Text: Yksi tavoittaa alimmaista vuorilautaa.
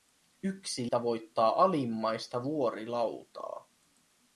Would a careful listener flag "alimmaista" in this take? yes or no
no